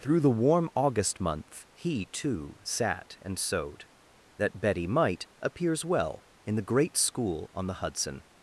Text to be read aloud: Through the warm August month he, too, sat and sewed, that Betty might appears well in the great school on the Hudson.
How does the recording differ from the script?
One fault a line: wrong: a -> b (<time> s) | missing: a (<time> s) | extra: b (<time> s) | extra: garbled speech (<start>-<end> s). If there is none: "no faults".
no faults